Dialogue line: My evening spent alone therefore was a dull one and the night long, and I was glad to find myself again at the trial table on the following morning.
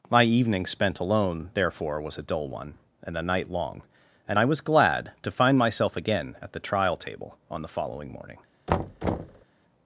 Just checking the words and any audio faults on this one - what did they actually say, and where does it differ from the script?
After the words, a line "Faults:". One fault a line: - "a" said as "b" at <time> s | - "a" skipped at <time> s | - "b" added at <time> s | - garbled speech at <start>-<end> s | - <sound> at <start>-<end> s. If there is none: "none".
My evening spent alone therefore was a dull one and a night long, and I was glad to find myself again at the trial table on the following morning.
Faults:
- "the" said as "a" at 3.2 s
- thud at 8.7-9.4 s